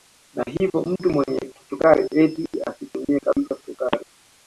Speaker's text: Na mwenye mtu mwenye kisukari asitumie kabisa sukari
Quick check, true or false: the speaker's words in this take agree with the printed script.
false